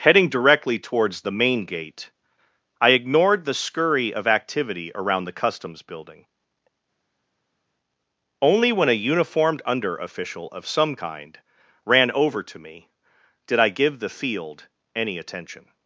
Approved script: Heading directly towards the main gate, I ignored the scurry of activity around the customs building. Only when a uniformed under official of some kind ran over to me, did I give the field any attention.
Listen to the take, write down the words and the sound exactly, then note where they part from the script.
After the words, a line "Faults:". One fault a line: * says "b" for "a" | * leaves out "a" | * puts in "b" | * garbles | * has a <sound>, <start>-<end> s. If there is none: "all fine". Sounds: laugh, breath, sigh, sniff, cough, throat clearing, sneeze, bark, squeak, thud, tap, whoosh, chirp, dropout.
Heading directly towards the main gate, I ignored the scurry of activity around the customs building. Only when a uniformed under official of some kind ran over to me, did I give the field any attention.
Faults:
all fine